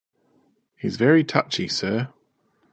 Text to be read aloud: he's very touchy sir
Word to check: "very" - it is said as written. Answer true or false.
true